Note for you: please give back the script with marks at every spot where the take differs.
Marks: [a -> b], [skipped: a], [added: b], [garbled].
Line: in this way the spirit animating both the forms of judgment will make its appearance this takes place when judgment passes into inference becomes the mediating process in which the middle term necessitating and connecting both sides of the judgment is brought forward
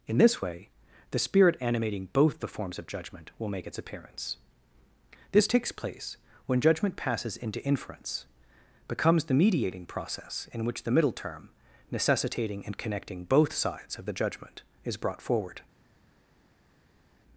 in this way the spirit animating both the forms of judgment will make its appearance this takes place when judgment passes into inference becomes the mediating process in which the middle term necessitating and connecting both sides of the judgment is brought forward